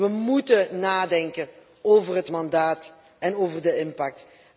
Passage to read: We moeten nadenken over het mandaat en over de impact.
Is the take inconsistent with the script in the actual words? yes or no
no